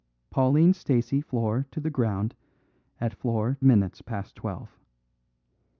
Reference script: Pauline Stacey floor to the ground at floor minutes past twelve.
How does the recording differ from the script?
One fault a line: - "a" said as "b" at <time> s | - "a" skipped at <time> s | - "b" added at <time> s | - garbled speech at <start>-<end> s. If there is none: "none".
none